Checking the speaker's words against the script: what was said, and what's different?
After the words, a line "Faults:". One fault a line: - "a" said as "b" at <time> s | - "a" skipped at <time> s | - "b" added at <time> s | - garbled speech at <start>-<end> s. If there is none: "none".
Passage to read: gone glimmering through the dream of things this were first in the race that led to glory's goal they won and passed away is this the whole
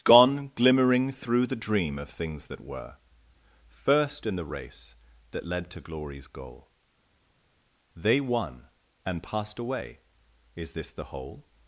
gone glimmering through the dream of things that were first in the race that led to glory's goal they won and passed away is this the whole
Faults:
- "this" said as "that" at 2.5 s